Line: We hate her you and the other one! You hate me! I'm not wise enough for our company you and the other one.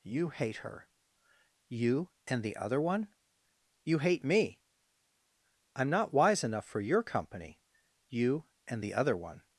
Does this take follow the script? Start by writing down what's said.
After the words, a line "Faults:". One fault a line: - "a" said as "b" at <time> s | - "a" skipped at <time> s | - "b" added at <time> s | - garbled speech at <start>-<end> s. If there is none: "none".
You hate her you and the other one! You hate me! I'm not wise enough for your company you and the other one.
Faults:
- "We" said as "You" at 0.0 s
- "our" said as "your" at 6.8 s